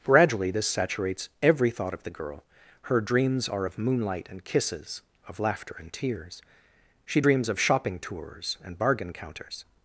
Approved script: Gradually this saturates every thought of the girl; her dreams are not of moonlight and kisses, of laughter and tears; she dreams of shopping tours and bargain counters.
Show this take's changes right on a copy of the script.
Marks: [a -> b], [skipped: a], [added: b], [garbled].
Gradually this saturates every thought of the girl; her dreams are [skipped: not] of moonlight and kisses, of laughter and tears; she dreams of shopping tours and bargain counters.